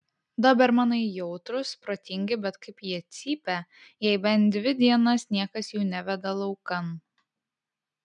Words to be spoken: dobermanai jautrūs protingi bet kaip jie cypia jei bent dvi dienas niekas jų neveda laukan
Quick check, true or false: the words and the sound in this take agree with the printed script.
true